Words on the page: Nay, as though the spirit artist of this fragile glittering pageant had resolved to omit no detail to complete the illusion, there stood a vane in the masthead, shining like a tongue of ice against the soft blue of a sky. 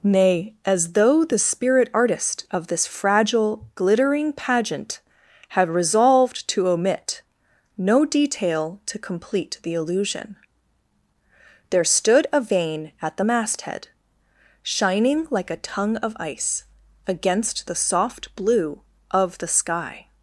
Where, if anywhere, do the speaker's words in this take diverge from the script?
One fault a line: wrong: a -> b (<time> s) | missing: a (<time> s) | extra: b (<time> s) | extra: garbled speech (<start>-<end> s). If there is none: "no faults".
wrong: in -> at (13.0 s)
wrong: a -> the (19.4 s)